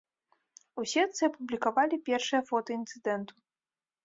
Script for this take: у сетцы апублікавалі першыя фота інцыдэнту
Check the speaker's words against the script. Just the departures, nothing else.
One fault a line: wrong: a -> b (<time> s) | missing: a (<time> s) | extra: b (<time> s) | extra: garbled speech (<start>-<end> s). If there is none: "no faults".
no faults